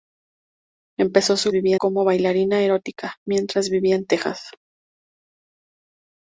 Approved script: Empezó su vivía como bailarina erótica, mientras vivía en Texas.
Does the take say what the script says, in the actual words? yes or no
yes